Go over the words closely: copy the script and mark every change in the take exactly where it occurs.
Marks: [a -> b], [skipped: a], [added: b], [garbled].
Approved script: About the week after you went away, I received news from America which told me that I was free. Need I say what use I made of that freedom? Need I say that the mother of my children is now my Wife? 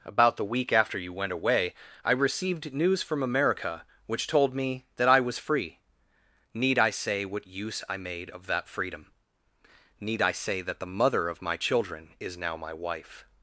About the week after you went away, I received news from America which told me that I was free. Need I say what use I made of that freedom? Need I say that the mother of my children is now my Wife?